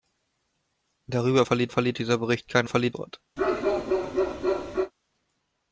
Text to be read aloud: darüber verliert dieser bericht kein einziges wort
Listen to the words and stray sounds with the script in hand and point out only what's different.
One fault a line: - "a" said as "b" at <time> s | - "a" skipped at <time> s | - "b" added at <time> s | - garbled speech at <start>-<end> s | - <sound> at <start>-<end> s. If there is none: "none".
- "verliert" added at 1.7 s
- "einziges" said as "verliert" at 2.7 s
- bark at 3.4-4.9 s